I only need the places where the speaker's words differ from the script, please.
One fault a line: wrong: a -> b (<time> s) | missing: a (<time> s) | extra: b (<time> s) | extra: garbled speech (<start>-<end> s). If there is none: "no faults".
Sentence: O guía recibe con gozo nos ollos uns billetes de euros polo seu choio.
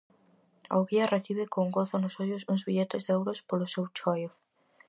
no faults